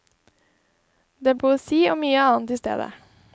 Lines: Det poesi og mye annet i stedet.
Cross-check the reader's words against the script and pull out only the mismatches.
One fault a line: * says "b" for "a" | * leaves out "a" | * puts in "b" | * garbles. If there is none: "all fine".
all fine